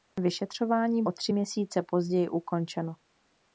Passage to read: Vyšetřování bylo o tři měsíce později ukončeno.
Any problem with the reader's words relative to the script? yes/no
yes